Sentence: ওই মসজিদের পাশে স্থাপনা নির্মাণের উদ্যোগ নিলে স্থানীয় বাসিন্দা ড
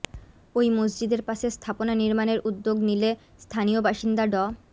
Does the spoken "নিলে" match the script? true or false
true